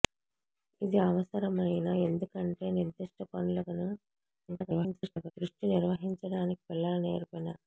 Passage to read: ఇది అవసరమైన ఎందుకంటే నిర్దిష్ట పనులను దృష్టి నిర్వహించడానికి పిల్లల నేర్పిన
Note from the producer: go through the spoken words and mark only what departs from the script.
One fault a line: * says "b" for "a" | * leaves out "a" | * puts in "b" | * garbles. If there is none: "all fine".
* garbles